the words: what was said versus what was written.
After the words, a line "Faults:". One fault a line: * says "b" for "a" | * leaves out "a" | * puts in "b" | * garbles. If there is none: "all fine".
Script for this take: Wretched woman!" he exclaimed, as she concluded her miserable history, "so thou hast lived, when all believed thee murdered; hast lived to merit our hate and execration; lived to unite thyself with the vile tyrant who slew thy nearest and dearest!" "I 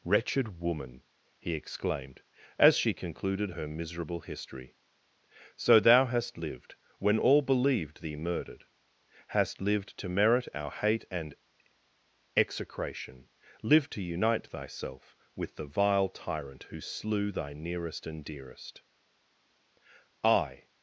Wretched woman!" he exclaimed, as she concluded her miserable history, "so thou hast lived, when all believed thee murdered; hast lived to merit our hate and execration; lived to unite thyself with the vile tyrant who slew thy nearest and dearest!" "I
Faults:
all fine